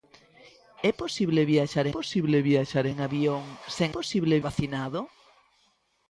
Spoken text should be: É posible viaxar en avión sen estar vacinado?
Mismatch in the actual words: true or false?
true